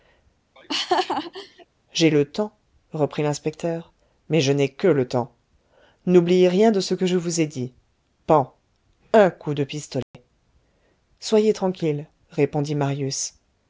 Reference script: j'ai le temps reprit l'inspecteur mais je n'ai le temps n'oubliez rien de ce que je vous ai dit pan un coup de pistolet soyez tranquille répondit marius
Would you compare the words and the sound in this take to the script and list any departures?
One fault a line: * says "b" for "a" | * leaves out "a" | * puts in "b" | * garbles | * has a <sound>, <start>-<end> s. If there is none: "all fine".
* has a laugh, 0.6-1.7 s
* puts in "que"
* has a dropout, 10.0-10.1 s